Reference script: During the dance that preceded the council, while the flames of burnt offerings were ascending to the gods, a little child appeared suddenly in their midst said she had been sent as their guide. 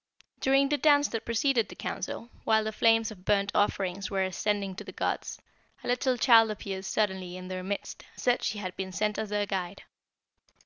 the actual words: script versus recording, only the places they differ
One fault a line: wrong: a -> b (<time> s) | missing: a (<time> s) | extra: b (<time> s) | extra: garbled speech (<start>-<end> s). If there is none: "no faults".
no faults